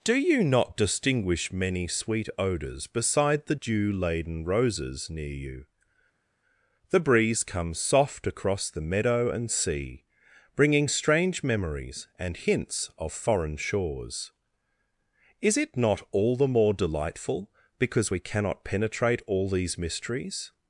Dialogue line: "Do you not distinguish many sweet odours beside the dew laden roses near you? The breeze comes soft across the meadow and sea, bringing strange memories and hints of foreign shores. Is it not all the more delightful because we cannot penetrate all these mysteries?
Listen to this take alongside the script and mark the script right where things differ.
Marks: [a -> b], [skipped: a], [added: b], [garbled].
"Do you not distinguish many sweet odours beside the dew laden roses near you? The breeze comes soft across the meadow and sea, bringing strange memories and hints of foreign shores. Is it not all the more delightful because we cannot penetrate all these mysteries?